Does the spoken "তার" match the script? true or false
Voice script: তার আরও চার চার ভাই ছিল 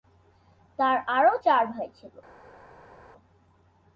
true